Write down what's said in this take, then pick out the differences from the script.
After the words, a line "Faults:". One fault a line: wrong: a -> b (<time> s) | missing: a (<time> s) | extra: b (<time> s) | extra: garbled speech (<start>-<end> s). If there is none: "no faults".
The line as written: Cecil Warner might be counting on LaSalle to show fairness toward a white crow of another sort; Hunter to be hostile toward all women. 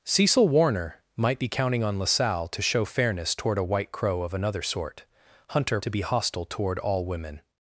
Cecil Warner might be counting on LaSalle to show fairness toward a white crow of another sort; Hunter to be hostile toward all women.
Faults:
no faults